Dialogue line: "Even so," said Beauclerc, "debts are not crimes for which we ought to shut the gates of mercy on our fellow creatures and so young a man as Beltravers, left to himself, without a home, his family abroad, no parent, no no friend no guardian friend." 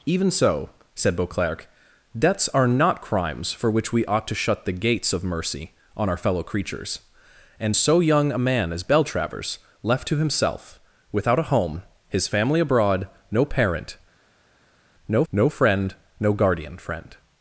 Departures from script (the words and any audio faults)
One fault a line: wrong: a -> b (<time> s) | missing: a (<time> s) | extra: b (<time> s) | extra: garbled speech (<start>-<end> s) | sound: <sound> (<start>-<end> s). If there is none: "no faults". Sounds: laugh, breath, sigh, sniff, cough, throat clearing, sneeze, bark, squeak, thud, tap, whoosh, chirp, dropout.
no faults